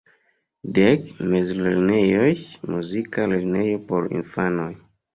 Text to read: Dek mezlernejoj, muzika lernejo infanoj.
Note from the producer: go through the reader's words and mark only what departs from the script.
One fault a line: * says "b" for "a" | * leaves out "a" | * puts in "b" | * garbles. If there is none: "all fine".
* puts in "por"